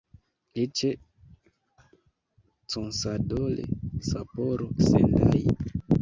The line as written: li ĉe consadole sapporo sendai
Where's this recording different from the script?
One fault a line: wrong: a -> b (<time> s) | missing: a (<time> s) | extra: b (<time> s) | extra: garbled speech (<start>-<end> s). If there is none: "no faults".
no faults